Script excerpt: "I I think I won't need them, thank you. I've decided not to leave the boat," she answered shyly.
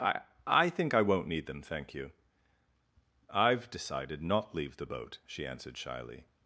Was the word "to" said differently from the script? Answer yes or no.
yes